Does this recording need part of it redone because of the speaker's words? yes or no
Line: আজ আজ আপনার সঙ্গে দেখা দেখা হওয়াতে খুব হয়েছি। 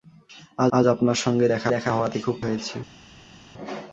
no